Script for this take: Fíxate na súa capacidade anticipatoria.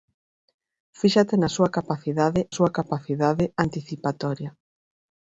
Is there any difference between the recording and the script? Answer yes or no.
yes